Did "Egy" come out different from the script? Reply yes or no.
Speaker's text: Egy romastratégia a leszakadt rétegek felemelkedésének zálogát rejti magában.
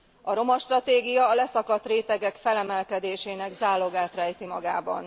yes